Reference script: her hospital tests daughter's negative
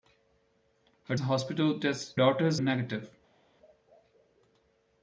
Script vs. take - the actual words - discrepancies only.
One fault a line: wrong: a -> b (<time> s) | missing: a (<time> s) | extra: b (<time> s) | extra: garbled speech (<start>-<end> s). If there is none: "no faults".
no faults